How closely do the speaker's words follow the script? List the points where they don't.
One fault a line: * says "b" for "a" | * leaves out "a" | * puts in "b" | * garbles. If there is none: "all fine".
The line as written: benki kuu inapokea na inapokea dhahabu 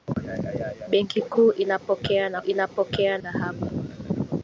all fine